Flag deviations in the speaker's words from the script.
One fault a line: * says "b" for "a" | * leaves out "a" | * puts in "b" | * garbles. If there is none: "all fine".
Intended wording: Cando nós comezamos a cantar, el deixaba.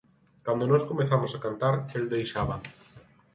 all fine